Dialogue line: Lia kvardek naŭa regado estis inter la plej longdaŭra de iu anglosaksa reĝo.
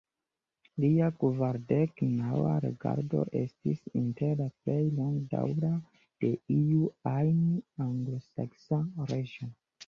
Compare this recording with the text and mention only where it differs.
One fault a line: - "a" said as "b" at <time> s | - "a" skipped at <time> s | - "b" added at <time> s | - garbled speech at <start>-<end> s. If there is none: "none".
- "ajn" added at 7.2 s